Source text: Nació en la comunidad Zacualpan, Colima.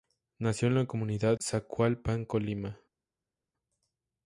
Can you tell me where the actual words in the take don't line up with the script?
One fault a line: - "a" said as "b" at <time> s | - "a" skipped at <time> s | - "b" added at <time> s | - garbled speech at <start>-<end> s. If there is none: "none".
none